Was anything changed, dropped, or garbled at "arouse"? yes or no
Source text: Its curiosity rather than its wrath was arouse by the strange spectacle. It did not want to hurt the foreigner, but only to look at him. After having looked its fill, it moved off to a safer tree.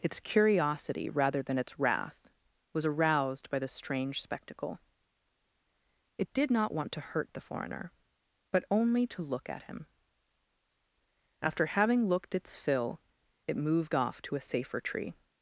yes